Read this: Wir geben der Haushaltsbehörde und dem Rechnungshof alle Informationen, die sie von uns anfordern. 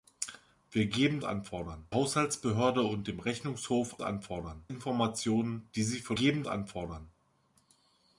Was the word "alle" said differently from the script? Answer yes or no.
yes